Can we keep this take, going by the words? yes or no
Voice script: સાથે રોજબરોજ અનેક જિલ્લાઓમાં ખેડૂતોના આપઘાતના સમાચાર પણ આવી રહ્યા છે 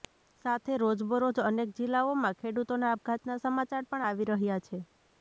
yes